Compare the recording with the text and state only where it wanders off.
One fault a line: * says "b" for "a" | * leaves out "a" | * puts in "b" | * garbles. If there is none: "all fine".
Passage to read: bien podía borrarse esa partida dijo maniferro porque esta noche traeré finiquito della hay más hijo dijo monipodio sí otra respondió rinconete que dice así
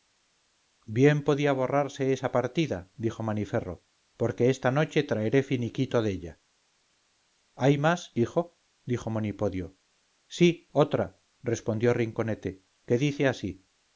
all fine